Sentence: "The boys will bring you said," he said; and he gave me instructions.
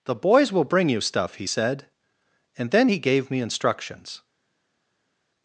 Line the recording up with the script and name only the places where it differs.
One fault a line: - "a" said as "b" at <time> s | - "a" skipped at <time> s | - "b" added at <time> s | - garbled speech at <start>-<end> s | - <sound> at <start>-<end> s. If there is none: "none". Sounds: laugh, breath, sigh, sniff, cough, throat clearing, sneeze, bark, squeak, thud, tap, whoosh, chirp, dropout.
- "said" said as "stuff" at 1.0 s
- "then" added at 2.7 s